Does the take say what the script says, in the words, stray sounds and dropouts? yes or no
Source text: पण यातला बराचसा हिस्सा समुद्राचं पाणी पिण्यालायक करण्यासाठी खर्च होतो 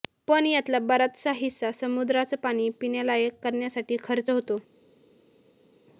yes